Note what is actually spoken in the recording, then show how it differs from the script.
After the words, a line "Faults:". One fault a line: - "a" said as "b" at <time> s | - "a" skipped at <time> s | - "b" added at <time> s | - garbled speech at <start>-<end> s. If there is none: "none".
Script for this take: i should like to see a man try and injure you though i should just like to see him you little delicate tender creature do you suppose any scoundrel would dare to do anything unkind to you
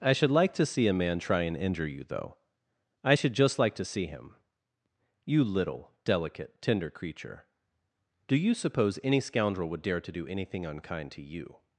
i should like to see a man try and injure you though i should just like to see him you little delicate tender creature do you suppose any scoundrel would dare to do anything unkind to you
Faults:
none